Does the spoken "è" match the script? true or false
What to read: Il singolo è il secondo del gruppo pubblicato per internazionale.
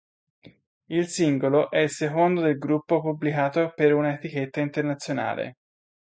true